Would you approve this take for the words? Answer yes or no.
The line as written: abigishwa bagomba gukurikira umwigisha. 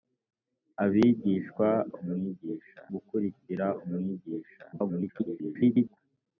no